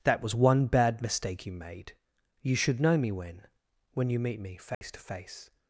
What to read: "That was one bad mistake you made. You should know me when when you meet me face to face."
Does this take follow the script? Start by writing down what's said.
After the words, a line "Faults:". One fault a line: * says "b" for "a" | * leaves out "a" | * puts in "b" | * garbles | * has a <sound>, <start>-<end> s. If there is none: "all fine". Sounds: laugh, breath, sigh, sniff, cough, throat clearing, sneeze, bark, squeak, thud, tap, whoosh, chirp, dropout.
"That was one bad mistake you made. You should know me when when you meet me face to face."
Faults:
* has a dropout, 4.7-4.8 s